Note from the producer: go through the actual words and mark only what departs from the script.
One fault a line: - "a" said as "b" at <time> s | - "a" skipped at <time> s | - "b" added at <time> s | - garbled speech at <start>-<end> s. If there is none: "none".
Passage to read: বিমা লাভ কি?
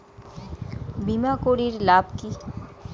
- "করির" added at 1.4 s